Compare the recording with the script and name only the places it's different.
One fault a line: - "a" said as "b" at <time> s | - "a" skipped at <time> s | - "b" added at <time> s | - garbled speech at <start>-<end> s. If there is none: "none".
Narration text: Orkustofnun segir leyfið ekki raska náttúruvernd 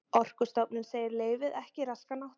none